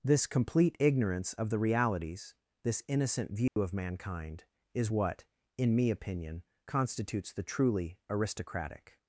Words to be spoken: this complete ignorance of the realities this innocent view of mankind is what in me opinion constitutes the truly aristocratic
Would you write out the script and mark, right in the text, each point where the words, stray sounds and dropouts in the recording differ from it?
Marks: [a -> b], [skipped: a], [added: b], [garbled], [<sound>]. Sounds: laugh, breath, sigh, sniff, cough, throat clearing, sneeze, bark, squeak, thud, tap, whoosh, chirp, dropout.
this complete ignorance of the realities this innocent view [dropout] of mankind is what in me opinion constitutes the truly aristocratic